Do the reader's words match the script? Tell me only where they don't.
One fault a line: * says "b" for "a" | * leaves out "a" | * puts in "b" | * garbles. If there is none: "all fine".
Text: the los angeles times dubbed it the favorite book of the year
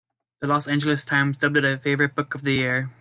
* says "a" for "the"